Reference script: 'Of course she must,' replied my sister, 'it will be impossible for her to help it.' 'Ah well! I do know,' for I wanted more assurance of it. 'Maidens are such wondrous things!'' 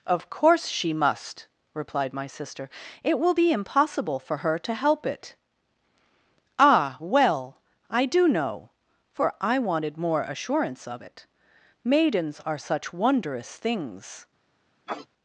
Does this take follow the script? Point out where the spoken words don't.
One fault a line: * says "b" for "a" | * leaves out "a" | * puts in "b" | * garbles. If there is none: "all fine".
all fine